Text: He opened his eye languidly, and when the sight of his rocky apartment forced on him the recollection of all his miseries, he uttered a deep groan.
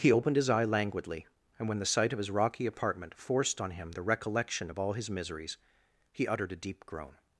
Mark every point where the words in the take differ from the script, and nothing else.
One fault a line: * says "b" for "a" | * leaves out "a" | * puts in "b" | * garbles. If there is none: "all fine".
all fine